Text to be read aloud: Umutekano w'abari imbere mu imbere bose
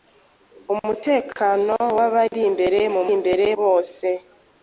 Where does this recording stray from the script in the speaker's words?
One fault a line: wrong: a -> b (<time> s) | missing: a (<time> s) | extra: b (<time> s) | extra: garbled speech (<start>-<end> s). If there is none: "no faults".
no faults